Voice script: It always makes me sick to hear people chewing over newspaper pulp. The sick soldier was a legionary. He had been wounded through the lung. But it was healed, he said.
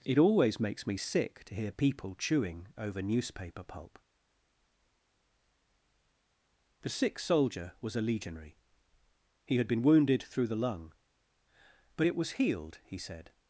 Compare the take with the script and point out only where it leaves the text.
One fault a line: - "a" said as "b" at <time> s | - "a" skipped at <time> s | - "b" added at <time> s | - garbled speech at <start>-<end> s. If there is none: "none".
none